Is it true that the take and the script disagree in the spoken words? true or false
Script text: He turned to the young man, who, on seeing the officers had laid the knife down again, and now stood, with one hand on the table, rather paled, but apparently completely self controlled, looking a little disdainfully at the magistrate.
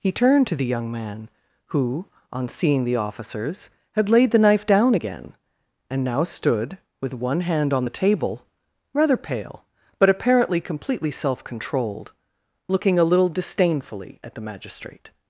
true